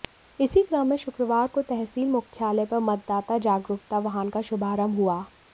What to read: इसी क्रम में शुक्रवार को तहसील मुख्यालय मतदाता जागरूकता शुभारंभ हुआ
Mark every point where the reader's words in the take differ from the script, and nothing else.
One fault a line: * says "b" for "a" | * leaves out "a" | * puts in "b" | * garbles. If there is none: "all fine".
* puts in "पर"
* puts in "वाहन का"